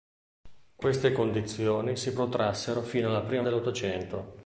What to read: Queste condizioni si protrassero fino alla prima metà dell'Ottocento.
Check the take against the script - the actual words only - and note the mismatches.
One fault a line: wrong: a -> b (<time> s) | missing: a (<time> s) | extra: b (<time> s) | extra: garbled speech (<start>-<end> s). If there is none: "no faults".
missing: metà (3.4 s)